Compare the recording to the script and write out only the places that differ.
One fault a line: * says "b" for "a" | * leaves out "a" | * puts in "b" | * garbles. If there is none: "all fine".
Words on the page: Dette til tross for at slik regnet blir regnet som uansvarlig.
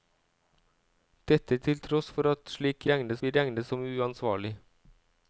all fine